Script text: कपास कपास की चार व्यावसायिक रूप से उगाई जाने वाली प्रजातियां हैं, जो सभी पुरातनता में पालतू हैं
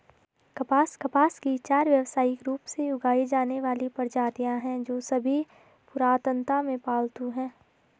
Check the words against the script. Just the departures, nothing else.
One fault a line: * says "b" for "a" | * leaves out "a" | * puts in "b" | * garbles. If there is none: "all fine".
all fine